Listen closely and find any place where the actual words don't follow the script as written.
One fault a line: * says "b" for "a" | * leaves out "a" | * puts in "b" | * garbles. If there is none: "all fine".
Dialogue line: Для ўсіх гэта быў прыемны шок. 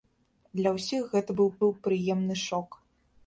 * puts in "быў"